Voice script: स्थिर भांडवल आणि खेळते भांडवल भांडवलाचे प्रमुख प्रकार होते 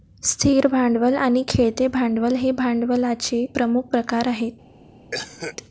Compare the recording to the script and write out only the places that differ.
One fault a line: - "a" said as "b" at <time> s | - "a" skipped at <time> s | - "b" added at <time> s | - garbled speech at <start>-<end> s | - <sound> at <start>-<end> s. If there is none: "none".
- "हे" added at 2.4 s
- "होते" said as "आहेत" at 4.3 s
- cough at 5.1-5.6 s